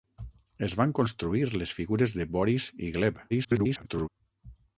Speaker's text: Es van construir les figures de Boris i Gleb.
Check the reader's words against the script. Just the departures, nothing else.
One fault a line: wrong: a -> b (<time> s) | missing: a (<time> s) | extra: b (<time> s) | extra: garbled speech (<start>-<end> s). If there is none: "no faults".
extra: garbled speech (3.3-4.1 s)